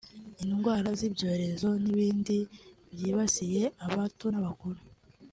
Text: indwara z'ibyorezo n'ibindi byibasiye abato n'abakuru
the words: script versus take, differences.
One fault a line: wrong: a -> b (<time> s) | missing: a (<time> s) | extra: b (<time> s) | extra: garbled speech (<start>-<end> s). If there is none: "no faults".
no faults